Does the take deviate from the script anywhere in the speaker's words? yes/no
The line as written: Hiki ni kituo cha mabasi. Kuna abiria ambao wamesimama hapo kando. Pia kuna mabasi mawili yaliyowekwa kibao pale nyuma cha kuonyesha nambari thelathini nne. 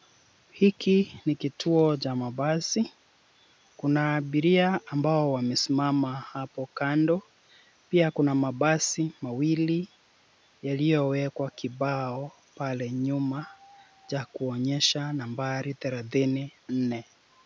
no